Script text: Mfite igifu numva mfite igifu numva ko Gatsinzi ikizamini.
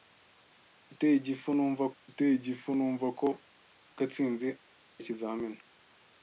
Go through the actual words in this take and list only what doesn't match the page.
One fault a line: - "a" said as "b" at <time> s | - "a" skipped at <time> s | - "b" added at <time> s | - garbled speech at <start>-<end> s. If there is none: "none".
none